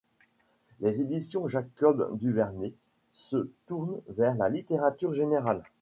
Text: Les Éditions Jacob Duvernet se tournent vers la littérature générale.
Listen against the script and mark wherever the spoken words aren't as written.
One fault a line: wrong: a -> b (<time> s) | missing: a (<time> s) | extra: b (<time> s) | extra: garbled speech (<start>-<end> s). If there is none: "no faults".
no faults